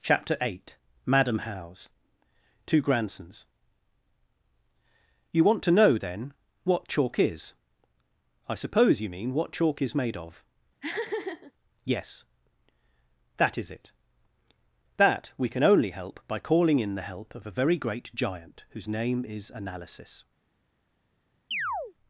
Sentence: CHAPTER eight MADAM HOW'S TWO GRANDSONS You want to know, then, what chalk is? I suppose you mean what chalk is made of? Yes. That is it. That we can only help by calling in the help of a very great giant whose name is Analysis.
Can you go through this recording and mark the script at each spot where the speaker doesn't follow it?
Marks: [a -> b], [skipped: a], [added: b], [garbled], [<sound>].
CHAPTER eight MADAM HOW'S TWO GRANDSONS You want to know, then, what chalk is? I suppose you mean what chalk is made of? [laugh] Yes. That is it. That we can only help by calling in the help of a very great giant whose name is Analysis. [chirp]